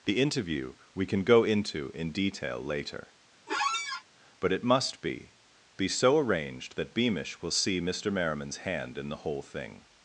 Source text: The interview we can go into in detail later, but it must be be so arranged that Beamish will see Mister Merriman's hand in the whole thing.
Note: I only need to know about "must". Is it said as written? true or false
true